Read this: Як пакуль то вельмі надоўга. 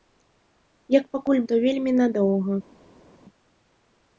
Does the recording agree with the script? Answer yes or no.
yes